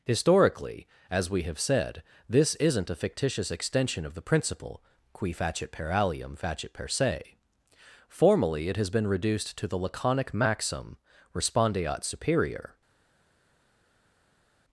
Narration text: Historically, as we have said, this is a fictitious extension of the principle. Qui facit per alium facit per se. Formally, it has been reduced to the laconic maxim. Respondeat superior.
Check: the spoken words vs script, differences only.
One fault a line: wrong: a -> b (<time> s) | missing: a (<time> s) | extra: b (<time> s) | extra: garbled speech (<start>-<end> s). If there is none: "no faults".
wrong: is -> isn't (2.5 s)